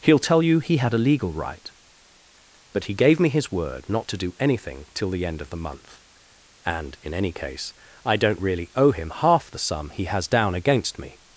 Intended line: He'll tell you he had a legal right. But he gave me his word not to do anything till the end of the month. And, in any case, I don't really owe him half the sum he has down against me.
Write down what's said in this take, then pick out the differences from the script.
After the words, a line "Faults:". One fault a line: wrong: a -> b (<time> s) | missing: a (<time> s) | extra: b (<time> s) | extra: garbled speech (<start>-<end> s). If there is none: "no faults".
He'll tell you he had a legal right. But he gave me his word not to do anything till the end of the month. And, in any case, I don't really owe him half the sum he has down against me.
Faults:
no faults